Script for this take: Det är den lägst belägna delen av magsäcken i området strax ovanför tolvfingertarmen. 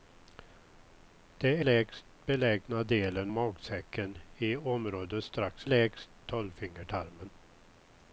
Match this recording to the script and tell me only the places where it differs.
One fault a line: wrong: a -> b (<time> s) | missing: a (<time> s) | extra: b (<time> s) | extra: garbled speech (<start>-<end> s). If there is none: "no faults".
missing: är den (1.6 s)
missing: av (3.3 s)
wrong: ovanför -> lägst (5.6 s)